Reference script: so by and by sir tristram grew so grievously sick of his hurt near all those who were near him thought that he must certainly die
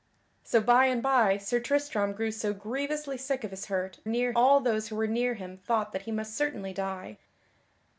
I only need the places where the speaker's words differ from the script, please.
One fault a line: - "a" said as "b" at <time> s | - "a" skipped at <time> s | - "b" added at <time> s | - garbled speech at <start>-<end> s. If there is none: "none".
none